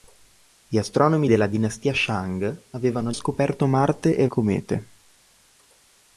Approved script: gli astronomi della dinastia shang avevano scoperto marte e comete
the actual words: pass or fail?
pass